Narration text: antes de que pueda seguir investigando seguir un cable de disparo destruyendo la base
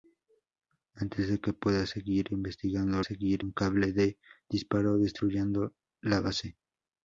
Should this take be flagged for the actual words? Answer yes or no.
no